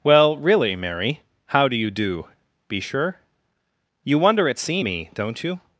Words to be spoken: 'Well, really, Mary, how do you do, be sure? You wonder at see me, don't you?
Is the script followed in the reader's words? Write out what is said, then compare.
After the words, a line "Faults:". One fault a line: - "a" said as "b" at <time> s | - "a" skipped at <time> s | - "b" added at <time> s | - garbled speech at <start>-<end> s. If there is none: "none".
'Well, really, Mary, how do you do, be sure? You wonder at see me, don't you?
Faults:
none